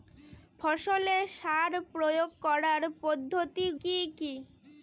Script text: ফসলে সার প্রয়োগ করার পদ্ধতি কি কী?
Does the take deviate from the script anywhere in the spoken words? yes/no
no